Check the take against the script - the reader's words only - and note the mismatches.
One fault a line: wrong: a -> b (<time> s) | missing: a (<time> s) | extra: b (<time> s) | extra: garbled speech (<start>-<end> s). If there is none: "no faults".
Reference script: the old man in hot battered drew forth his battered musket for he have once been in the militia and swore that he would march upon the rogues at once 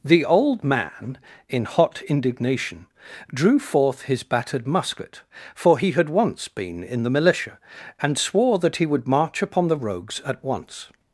wrong: battered -> indignation (2.0 s)
wrong: have -> had (5.9 s)